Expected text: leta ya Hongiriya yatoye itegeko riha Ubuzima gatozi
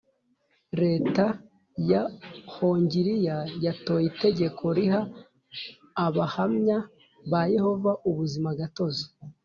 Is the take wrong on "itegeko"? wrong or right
right